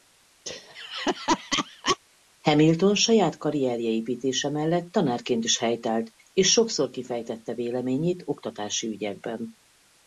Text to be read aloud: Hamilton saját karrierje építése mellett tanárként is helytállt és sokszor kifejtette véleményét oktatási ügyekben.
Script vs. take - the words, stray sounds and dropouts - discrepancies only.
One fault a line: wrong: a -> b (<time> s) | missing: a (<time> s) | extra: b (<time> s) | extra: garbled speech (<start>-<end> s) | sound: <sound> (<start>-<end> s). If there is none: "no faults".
sound: laugh (0.5-2.0 s)